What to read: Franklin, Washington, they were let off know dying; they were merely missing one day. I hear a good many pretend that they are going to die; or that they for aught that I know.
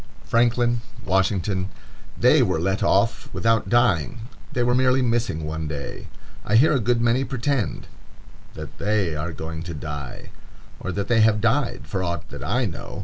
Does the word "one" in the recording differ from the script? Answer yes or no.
no